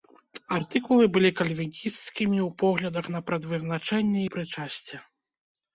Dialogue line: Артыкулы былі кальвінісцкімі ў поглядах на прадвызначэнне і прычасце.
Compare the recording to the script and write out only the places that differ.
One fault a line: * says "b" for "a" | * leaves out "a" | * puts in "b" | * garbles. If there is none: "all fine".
all fine